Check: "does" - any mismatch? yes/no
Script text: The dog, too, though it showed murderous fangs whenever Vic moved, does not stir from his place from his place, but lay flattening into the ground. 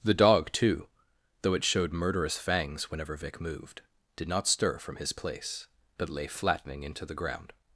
yes